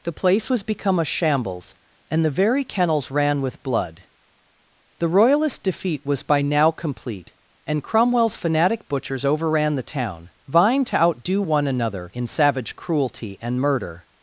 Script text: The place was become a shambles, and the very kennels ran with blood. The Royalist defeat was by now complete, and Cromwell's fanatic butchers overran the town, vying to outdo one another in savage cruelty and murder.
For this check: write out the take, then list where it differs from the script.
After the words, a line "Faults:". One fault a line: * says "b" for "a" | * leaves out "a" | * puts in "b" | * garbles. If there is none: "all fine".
The place was become a shambles, and the very kennels ran with blood. The Royalist defeat was by now complete, and Cromwell's fanatic butchers overran the town, vying to outdo one another in savage cruelty and murder.
Faults:
all fine